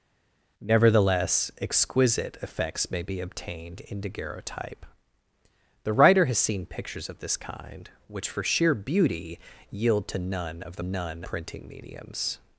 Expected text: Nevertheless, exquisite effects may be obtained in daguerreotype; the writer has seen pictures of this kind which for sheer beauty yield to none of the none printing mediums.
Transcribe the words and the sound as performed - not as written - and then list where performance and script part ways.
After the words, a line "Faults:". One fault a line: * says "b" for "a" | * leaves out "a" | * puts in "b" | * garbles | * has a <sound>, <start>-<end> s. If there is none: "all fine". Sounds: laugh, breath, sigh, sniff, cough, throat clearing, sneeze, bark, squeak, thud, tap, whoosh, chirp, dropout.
Nevertheless, exquisite effects may be obtained in daguerreotype; the writer has seen pictures of this kind which for sheer beauty yield to none of the none printing mediums.
Faults:
all fine